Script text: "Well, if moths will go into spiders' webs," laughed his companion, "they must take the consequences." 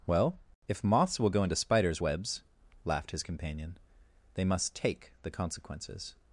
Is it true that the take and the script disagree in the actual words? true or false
false